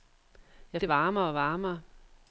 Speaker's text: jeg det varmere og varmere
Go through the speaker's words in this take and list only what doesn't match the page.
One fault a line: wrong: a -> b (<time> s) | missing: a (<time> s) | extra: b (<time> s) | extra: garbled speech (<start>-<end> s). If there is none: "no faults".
no faults